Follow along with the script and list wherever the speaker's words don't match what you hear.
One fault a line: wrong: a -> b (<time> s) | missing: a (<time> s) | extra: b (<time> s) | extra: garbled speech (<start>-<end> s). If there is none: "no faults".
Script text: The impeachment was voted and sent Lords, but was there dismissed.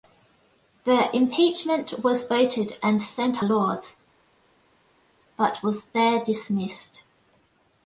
no faults